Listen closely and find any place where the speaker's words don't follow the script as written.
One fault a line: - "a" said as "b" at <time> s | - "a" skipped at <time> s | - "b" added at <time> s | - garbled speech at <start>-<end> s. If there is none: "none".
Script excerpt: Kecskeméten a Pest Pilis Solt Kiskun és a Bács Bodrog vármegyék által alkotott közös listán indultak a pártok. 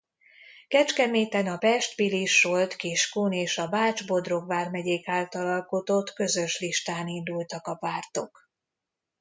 none